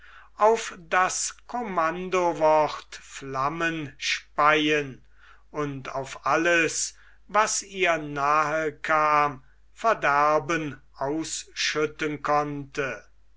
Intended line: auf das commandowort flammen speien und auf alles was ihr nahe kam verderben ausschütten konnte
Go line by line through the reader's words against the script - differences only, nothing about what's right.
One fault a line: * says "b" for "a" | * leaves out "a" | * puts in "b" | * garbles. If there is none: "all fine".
all fine